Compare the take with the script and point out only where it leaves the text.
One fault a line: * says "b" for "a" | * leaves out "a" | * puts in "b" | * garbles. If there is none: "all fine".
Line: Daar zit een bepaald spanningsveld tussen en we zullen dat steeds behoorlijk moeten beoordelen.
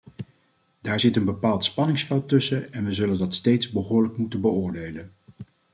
all fine